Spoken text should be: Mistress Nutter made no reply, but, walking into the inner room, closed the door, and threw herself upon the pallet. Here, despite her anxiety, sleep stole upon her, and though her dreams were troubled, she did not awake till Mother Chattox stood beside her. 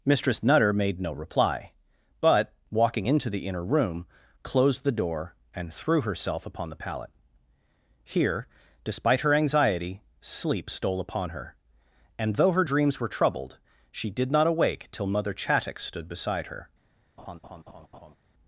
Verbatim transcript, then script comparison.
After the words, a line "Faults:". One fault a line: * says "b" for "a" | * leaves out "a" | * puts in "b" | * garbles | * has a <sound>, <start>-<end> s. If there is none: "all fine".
Mistress Nutter made no reply, but, walking into the inner room, closed the door, and threw herself upon the pallet. Here, despite her anxiety, sleep stole upon her, and though her dreams were troubled, she did not awake till Mother Chattox stood beside her.
Faults:
* has a laugh, 17.2-18.2 s